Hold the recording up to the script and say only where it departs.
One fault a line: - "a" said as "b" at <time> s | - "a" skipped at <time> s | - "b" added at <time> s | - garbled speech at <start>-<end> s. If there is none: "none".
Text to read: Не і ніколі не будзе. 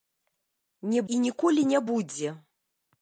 none